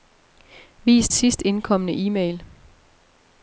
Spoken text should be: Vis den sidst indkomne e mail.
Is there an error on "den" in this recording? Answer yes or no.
yes